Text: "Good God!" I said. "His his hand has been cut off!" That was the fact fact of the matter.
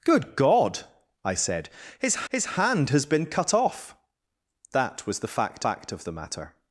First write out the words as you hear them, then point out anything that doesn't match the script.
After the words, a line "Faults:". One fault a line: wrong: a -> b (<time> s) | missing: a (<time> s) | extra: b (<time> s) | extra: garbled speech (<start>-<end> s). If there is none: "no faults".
"Good God!" I said. "His his hand has been cut off!" That was the fact fact of the matter.
Faults:
no faults